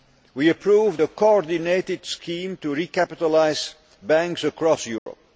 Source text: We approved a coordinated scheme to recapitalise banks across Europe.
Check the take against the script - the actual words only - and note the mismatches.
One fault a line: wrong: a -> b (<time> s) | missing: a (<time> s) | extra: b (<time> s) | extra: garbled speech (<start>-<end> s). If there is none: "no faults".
no faults